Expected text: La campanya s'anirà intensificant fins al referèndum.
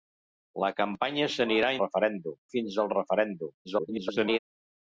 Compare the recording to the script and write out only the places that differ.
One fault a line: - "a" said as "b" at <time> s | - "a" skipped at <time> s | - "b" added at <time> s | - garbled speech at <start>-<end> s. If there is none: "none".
- "intensificant" said as "referèndum" at 1.8 s
- garbled speech at 3.6-4.4 s